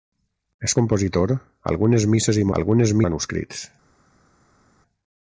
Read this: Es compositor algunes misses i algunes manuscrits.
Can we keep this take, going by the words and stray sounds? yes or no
yes